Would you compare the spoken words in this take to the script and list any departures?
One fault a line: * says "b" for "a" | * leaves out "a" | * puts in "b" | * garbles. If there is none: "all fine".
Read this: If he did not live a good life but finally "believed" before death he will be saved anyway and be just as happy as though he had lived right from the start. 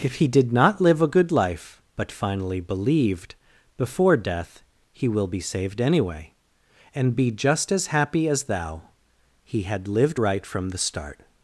* says "thou" for "though"